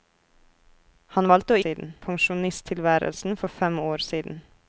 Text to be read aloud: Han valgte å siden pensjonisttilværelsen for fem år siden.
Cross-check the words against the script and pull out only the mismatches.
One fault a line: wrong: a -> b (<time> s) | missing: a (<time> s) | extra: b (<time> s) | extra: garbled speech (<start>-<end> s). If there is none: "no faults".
no faults